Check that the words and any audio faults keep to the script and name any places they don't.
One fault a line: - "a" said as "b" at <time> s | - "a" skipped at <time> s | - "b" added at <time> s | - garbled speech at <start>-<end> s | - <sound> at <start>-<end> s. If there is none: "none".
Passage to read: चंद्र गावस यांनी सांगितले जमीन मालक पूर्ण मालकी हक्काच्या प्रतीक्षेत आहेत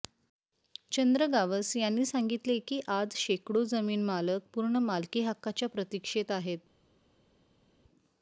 - "की आज शेकडो" added at 2.6 s